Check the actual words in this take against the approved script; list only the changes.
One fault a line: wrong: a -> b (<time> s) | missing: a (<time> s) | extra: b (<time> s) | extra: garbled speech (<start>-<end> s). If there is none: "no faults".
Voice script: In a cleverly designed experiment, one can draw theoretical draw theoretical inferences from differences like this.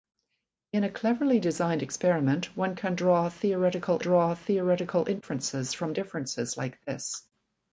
no faults